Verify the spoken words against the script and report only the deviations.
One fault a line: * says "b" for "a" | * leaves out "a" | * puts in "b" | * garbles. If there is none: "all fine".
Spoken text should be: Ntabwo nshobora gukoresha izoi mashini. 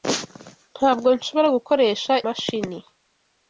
* leaves out "izoi"